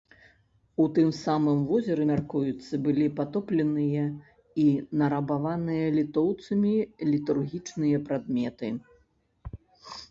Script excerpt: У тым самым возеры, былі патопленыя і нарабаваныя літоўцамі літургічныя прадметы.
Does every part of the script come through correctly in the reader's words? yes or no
no